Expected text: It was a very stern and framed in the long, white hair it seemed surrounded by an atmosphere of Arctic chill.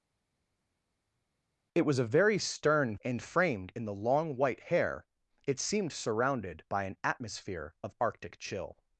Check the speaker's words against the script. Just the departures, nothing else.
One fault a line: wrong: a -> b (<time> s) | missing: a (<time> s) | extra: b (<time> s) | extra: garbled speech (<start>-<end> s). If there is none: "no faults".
no faults